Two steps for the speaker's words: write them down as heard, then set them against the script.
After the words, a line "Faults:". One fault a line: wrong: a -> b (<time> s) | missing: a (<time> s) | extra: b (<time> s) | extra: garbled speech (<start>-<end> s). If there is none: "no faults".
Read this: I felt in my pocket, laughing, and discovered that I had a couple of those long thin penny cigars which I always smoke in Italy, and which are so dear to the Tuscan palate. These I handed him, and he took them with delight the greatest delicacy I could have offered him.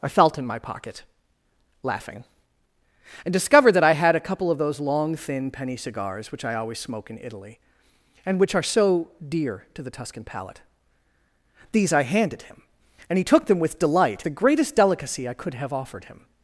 I felt in my pocket, laughing, and discovered that I had a couple of those long thin penny cigars which I always smoke in Italy, and which are so dear to the Tuscan palate. These I handed him, and he took them with delight the greatest delicacy I could have offered him.
Faults:
no faults